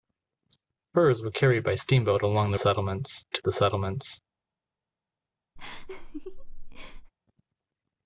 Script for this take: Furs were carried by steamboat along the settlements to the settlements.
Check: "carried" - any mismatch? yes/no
no